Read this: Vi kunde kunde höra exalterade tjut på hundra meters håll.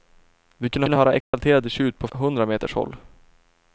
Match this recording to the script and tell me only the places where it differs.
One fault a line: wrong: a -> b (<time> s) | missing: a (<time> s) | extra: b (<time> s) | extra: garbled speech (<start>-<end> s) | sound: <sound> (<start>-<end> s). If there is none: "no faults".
sound: dropout (1.2-1.3 s)